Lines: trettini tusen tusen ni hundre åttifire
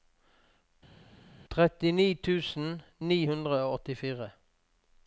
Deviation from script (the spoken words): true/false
true